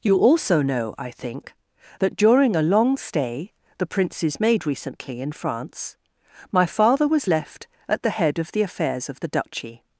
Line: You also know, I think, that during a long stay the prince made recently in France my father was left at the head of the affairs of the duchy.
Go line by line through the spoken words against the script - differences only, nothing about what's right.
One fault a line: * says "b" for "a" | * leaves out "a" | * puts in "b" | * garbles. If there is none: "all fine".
* says "princes" for "prince"